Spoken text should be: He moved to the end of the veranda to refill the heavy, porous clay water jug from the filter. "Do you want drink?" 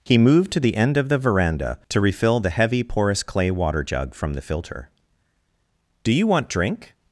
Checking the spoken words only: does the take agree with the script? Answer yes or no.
yes